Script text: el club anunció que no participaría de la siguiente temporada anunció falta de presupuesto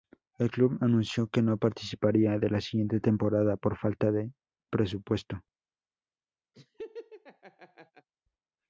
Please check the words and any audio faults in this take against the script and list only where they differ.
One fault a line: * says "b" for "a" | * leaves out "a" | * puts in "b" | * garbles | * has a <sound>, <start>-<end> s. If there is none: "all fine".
* says "por" for "anunció"
* has a laugh, 6.5-8.1 s